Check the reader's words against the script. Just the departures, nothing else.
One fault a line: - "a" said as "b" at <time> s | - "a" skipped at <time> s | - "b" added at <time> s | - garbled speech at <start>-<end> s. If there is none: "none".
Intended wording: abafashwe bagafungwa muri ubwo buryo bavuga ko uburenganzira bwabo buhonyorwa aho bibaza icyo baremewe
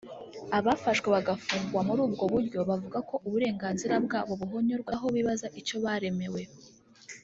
none